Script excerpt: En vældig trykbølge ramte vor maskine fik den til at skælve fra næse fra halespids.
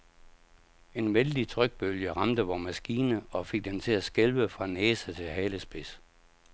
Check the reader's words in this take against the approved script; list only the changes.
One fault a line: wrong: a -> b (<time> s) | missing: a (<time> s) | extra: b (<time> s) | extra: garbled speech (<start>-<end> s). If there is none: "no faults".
extra: og (3.3 s)
wrong: fra -> til (5.1 s)